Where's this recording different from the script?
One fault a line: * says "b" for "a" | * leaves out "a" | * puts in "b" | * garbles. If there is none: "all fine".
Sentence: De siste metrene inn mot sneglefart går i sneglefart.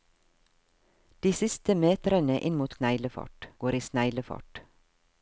all fine